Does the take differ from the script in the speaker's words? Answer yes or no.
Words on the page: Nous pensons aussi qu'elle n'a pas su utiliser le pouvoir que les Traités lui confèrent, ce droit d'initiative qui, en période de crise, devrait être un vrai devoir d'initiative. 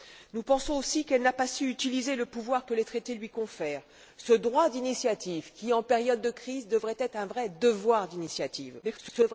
yes